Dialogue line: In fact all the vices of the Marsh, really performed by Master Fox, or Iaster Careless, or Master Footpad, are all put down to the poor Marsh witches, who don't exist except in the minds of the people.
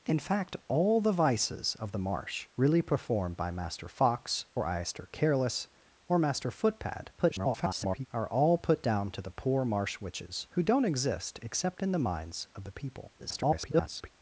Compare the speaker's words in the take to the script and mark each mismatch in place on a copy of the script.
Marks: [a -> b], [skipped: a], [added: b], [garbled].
In fact all the vices of the Marsh, really performed by Master Fox, or Iaster Careless, or Master Footpad, [garbled] are all put down to the poor Marsh witches, who don't exist except in the minds of the people. [garbled]